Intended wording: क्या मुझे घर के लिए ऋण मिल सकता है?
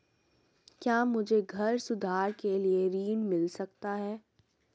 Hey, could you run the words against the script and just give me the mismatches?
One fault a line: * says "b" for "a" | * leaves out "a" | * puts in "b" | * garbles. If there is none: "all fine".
* puts in "सुधार"